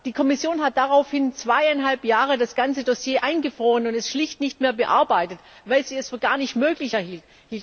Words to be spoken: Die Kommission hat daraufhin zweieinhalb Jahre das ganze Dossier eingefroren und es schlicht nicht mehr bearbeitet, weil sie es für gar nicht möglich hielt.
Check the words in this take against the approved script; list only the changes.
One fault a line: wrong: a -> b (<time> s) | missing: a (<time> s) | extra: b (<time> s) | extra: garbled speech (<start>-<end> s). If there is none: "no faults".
no faults